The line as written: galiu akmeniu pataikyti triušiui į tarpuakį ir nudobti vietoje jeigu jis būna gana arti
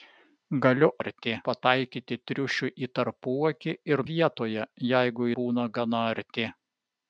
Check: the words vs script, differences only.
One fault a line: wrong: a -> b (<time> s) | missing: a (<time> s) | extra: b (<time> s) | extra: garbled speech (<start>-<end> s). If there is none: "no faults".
wrong: akmeniu -> arti (1.0 s)
missing: nudobti (4.0 s)
missing: jis (5.3 s)